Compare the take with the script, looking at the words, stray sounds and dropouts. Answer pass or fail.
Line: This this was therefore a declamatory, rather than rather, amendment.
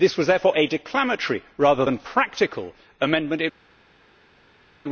fail